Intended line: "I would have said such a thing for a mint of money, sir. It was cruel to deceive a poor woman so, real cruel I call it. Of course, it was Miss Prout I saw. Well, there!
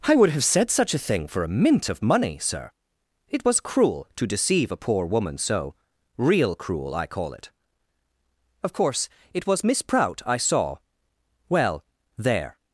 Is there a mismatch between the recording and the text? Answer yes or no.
no